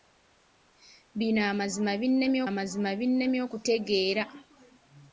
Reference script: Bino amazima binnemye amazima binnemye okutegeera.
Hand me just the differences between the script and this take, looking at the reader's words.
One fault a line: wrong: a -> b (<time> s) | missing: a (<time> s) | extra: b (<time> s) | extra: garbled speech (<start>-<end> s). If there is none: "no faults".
no faults